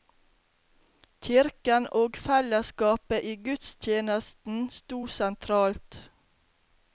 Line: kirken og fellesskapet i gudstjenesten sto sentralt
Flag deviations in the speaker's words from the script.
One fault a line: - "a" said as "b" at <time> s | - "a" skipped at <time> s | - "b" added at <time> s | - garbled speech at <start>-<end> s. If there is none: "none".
none